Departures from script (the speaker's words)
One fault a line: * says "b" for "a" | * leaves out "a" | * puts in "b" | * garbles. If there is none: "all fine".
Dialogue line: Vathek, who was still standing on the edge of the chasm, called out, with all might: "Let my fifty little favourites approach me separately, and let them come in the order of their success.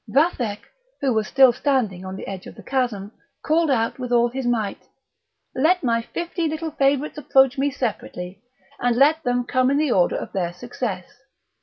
* puts in "his"